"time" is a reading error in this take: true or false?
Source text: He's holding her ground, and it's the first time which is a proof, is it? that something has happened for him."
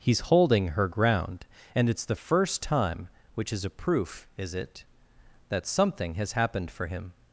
false